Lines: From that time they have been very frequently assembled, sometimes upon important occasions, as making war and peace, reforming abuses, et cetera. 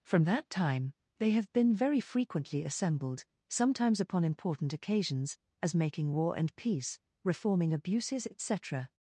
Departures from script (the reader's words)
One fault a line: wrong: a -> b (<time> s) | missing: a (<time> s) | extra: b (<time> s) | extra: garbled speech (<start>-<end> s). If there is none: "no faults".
no faults